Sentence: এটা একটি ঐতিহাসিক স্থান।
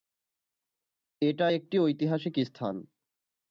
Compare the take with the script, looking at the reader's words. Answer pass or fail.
pass